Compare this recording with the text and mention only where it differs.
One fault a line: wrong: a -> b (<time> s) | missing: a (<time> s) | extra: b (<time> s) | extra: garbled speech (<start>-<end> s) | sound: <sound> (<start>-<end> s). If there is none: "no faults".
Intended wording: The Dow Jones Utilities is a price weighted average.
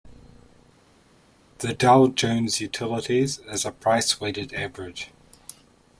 no faults